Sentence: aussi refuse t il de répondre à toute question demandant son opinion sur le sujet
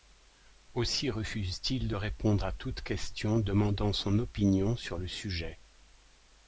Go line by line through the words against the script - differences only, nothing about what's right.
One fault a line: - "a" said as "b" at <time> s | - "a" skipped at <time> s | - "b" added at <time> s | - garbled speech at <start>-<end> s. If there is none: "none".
none